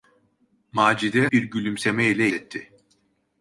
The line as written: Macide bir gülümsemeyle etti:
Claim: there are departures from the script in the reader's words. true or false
false